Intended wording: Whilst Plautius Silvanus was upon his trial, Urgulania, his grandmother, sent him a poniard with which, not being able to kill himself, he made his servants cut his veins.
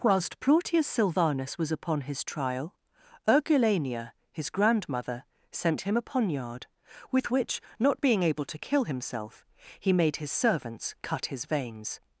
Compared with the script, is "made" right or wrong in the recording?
right